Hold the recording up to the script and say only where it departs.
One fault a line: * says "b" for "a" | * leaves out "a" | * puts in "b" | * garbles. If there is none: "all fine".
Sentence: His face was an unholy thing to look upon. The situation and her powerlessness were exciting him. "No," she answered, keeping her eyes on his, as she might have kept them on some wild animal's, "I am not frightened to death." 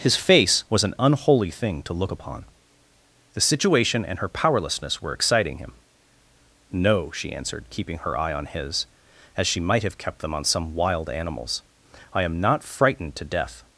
* says "eye" for "eyes"